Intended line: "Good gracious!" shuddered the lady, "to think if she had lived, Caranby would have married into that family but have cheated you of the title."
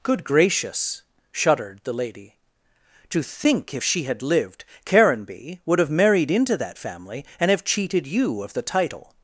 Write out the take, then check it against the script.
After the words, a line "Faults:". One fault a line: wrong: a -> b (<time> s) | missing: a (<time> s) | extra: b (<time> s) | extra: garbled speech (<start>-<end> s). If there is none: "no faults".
"Good gracious!" shuddered the lady, "to think if she had lived, Caranby would have married into that family and have cheated you of the title."
Faults:
wrong: but -> and (7.4 s)